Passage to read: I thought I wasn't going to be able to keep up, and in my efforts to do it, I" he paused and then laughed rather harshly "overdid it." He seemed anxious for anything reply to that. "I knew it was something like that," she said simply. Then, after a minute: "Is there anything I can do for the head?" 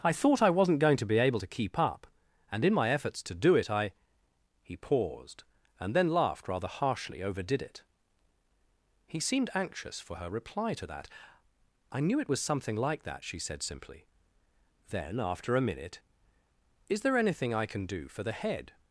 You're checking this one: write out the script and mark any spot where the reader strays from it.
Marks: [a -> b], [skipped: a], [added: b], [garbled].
I thought I wasn't going to be able to keep up, and in my efforts to do it, I" he paused and then laughed rather harshly "overdid it." He seemed anxious for [anything -> her] reply to that. "I knew it was something like that," she said simply. Then, after a minute: "Is there anything I can do for the head?"